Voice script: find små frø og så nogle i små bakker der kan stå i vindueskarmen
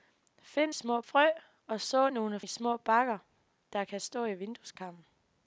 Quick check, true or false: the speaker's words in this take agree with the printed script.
true